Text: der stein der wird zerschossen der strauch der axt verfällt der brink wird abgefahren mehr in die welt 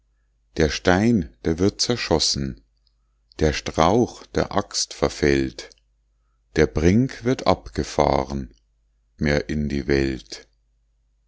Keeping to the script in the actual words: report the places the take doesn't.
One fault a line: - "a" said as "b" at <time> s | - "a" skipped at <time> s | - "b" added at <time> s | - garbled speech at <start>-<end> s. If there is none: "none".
none